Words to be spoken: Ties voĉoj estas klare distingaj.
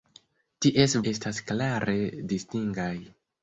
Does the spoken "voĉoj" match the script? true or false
false